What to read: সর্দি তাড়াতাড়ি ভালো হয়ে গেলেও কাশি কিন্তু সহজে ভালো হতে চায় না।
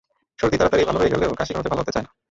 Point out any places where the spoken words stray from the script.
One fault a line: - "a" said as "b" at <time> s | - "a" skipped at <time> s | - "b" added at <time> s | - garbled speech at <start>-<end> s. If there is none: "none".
- "কিন্তু" skipped at 1.5 s